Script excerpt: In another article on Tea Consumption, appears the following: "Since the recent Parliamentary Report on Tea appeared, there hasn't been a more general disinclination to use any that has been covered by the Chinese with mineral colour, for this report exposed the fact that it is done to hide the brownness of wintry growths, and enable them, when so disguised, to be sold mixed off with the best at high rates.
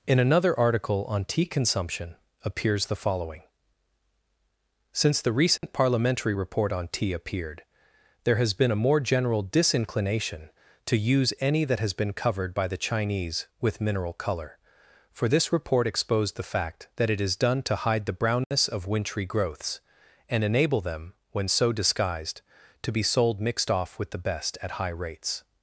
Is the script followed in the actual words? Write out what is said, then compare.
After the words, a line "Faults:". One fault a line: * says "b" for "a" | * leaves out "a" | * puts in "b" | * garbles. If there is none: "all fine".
In another article on Tea Consumption, appears the following: "Since the recent Parliamentary Report on Tea appeared, there has been a more general disinclination to use any that has been covered by the Chinese with mineral colour, for this report exposed the fact that it is done to hide the brownness of wintry growths, and enable them, when so disguised, to be sold mixed off with the best at high rates.
Faults:
* says "has" for "hasn't"